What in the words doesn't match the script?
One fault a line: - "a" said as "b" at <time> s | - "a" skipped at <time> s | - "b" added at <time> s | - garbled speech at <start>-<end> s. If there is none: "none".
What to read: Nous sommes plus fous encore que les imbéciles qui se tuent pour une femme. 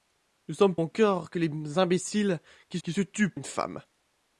- "plus fous" skipped at 0.8 s
- "qui" added at 2.8 s
- "pour" skipped at 3.3 s